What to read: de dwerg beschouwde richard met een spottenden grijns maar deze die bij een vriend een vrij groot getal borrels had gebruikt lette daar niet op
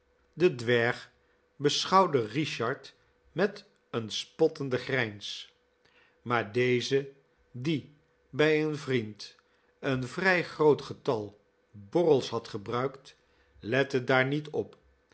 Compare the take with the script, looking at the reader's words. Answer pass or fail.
pass